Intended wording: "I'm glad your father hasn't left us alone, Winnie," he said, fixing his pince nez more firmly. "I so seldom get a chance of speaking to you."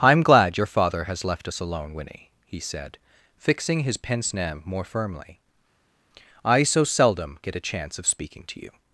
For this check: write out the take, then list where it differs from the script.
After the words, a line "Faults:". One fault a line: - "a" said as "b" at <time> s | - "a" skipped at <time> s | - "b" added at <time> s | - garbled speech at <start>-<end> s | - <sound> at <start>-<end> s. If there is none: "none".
"I'm glad your father has left us alone, Winnie," he said, fixing his pince nez more firmly. "I so seldom get a chance of speaking to you."
Faults:
- "hasn't" said as "has" at 1.0 s